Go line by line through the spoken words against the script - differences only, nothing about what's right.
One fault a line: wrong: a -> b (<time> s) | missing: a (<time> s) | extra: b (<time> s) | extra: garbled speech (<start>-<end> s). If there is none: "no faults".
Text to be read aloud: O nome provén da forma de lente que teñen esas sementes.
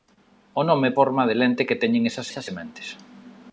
missing: provén da (0.9 s)
extra: esas (2.3 s)